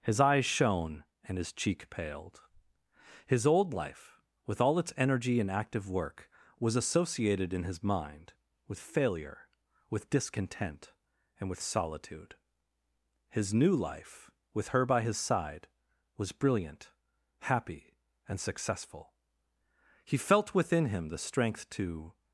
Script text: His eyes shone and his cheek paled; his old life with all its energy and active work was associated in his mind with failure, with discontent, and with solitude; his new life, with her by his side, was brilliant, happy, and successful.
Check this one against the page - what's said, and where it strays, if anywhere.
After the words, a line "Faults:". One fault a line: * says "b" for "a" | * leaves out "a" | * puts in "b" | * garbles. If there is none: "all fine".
His eyes shone and his cheek paled; his old life with all its energy and active work was associated in his mind with failure, with discontent, and with solitude; his new life, with her by his side, was brilliant, happy, and successful. He felt within him the strength to
Faults:
* puts in "He felt within him the strength to"